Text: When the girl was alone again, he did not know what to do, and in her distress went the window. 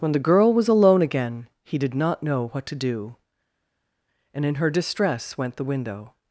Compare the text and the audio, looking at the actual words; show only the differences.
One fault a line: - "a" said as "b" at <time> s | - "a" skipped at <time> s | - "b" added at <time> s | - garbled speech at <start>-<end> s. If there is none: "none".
none